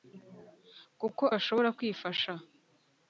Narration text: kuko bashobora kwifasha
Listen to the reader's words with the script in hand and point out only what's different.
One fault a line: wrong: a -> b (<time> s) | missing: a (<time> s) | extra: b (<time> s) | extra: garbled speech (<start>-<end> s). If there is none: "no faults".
no faults